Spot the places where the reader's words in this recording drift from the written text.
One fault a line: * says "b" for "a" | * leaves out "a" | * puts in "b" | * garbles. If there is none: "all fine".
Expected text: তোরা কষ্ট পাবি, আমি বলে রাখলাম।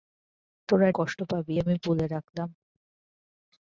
all fine